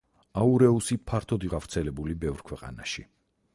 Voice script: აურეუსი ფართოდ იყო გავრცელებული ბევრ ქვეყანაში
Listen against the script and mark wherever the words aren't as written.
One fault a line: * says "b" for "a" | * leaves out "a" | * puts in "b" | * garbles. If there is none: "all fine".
* leaves out "იყო"